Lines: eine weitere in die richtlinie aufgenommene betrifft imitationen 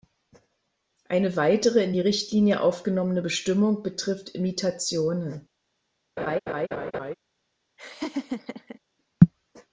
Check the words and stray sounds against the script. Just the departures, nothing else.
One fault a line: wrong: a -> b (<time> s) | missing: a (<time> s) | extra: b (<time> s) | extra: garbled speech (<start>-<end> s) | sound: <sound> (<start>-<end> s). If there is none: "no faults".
extra: bestimmung (3.2 s)
sound: laugh (6.2-7.1 s)
sound: laugh (7.8-8.8 s)